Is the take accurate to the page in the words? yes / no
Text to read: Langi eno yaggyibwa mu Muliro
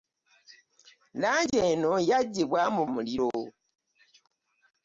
yes